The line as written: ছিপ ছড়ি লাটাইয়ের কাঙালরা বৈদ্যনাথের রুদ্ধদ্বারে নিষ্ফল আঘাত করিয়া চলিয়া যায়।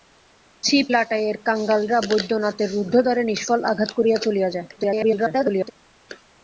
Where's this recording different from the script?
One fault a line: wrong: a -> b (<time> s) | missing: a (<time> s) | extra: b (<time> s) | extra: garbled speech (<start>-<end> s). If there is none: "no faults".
missing: ছড়ি (0.9 s)
extra: garbled speech (4.8-5.7 s)